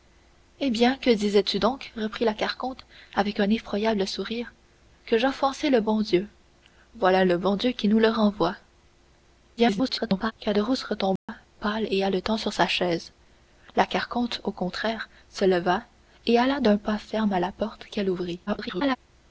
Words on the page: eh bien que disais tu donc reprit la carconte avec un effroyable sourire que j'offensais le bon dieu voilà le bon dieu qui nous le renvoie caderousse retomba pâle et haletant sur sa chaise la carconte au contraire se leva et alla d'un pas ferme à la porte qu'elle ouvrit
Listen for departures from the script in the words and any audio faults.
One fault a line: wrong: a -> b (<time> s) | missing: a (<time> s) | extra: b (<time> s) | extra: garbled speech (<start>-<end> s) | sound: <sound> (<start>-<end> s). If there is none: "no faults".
extra: garbled speech (9.6-10.3 s)
sound: dropout (11.2-11.3 s)
extra: garbled speech (18.5-19.0 s)